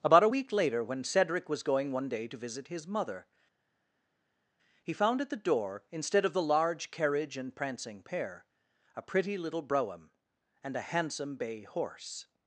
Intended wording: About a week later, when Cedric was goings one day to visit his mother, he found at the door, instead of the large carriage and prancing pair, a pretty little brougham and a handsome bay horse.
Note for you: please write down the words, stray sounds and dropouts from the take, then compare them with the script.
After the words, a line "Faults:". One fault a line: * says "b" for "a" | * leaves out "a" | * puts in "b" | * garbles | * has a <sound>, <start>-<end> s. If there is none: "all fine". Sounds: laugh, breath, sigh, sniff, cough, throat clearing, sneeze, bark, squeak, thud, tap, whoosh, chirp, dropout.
About a week later, when Cedric was going one day to visit his mother, he found at the door, instead of the large carriage and prancing pair, a pretty little brougham and a handsome bay horse.
Faults:
* says "going" for "goings"